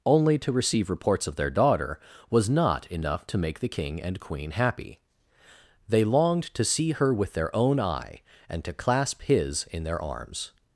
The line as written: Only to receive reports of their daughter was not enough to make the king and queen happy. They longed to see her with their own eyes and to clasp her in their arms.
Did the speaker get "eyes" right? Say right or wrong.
wrong